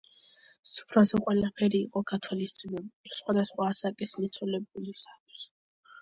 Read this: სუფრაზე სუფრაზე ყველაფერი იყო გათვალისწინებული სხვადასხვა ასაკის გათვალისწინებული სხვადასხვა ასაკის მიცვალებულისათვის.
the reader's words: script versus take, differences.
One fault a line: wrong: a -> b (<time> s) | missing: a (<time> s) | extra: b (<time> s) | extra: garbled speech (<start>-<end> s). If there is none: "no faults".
missing: სუფრაზე (1.2 s)
missing: გათვალისწინებული სხვადასხვა ასაკის (4.2 s)